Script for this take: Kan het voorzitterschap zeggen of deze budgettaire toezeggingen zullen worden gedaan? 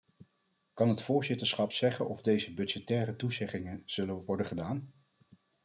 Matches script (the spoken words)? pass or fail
pass